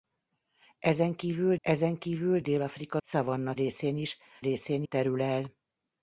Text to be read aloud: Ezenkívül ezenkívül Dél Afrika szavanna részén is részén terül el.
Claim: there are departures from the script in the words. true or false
false